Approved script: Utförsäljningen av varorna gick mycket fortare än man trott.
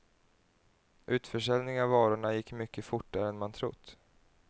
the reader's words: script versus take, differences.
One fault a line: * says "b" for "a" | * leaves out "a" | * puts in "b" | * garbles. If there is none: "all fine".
all fine